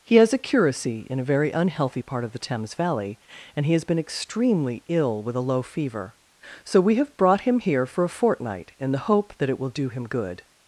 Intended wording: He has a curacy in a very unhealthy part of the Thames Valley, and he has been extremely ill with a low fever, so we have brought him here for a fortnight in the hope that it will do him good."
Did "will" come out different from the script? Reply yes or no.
no